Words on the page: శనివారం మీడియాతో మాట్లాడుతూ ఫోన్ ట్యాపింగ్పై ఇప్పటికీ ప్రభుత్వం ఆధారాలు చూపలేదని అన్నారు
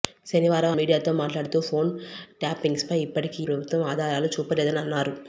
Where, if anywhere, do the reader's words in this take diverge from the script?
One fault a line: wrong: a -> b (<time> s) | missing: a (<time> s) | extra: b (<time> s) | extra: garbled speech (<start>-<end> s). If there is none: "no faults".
no faults